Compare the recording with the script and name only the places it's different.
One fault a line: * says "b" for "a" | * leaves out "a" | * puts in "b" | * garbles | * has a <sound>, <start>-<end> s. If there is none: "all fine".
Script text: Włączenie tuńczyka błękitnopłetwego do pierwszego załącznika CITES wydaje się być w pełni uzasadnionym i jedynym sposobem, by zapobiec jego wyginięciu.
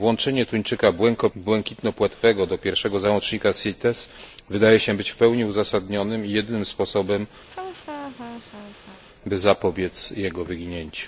* has a laugh, 7.5-9.0 s